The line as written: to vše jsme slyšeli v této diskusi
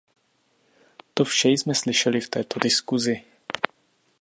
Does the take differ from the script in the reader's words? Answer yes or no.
no